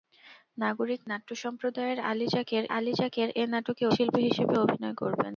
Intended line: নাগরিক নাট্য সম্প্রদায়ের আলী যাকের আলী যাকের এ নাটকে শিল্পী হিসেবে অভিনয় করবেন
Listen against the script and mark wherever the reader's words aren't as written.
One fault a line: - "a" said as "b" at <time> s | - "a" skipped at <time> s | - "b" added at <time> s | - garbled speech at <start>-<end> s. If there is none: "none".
none